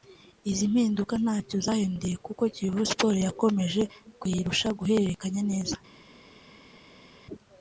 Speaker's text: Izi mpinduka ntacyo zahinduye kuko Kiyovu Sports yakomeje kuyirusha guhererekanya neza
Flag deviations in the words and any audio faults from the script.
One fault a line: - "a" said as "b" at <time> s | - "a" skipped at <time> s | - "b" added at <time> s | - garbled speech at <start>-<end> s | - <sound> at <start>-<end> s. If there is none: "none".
none